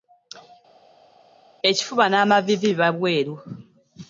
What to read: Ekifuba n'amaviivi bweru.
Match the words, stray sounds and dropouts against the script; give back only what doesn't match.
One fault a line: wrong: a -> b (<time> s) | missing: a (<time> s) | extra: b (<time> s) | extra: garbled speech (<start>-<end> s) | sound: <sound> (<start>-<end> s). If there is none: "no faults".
extra: biba (2.7 s)